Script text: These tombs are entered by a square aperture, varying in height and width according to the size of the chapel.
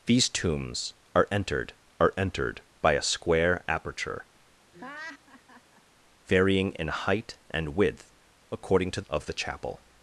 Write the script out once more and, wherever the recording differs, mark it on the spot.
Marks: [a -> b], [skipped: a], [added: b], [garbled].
These tombs are entered [added: are entered] by a square aperture, varying in height and width according to [skipped: the size] of the chapel.